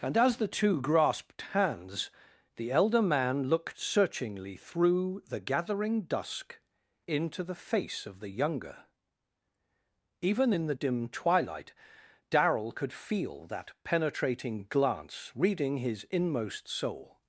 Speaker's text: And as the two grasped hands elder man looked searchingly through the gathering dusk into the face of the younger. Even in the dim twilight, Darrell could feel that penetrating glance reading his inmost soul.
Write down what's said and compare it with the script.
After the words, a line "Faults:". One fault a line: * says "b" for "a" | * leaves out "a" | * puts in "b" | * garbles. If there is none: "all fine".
And as the two grasped hands the elder man looked searchingly through the gathering dusk into the face of the younger. Even in the dim twilight, Darrell could feel that penetrating glance reading his inmost soul.
Faults:
* puts in "the"